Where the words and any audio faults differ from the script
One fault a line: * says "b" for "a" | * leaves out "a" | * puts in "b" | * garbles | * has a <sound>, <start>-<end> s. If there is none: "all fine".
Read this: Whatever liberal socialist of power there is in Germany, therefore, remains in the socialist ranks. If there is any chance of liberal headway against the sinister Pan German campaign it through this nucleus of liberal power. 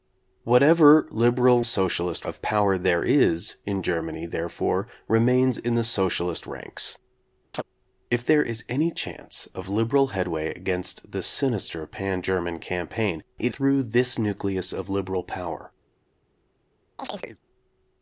* has a chirp, 7.5-7.6 s
* has a chirp, 17.0-17.4 s